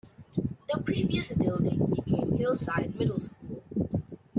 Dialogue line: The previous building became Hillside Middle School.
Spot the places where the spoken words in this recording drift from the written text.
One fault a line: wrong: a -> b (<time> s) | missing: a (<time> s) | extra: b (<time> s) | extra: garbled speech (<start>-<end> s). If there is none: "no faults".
no faults